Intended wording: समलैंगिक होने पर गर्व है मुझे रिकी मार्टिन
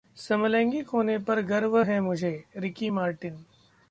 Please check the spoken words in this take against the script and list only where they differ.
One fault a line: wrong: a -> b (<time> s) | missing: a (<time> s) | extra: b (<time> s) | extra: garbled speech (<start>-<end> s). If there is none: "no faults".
no faults